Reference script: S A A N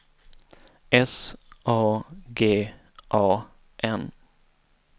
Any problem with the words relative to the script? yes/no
yes